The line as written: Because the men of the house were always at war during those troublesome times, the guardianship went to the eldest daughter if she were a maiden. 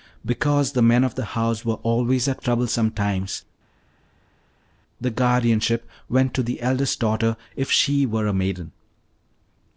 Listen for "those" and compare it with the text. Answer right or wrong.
wrong